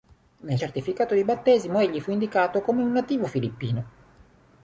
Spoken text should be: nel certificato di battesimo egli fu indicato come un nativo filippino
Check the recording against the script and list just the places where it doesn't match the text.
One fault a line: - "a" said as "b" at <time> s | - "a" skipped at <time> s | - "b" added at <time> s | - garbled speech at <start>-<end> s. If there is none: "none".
none